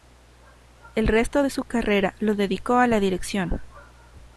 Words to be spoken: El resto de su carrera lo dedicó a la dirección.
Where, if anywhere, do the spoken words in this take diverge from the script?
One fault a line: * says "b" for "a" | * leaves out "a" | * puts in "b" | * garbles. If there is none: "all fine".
all fine